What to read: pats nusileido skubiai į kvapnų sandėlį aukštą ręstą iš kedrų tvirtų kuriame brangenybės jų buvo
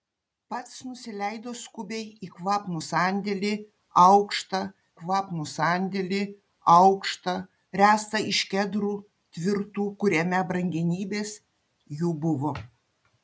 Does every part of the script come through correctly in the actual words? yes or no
no